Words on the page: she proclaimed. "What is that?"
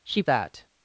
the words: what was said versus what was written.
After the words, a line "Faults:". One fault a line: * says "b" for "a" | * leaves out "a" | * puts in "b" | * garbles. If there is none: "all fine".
she that?"
Faults:
* leaves out "proclaimed What is"